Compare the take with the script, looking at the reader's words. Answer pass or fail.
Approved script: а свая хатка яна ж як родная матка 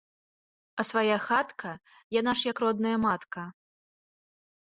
pass